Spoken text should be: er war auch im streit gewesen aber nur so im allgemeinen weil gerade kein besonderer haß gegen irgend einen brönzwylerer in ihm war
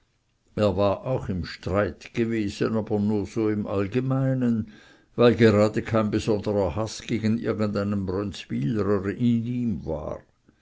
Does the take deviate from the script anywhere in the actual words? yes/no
no